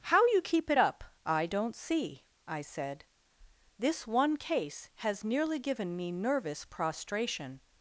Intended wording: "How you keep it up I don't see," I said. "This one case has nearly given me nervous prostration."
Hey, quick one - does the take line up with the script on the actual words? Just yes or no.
yes